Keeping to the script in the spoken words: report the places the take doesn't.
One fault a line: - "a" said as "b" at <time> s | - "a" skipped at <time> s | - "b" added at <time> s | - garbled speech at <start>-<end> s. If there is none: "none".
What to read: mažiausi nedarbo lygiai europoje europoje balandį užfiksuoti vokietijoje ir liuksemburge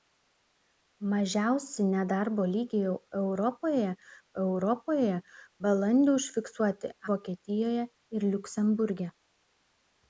none